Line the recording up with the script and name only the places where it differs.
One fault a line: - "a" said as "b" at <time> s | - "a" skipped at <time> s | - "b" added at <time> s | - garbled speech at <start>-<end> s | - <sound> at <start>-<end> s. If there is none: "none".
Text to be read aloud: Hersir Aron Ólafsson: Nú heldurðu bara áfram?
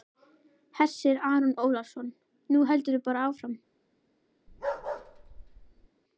- bark at 4.5-5.9 s